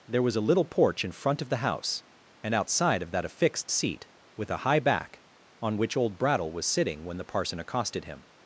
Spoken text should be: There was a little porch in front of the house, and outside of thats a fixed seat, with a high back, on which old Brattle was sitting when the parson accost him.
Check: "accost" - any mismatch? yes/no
yes